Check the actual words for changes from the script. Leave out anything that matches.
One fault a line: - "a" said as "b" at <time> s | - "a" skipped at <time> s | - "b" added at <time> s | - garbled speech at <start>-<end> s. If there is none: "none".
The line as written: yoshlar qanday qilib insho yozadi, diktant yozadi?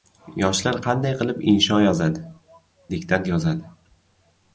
none